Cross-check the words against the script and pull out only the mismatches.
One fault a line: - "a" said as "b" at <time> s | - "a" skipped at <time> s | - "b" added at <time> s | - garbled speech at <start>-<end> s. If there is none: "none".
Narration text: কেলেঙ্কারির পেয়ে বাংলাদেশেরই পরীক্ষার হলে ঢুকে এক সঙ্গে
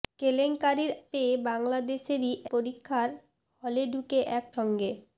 none